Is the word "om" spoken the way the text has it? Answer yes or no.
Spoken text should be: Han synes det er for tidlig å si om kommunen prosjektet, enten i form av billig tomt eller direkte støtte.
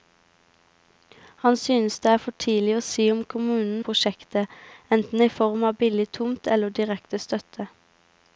yes